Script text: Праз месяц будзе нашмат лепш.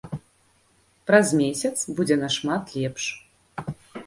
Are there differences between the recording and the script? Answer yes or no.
no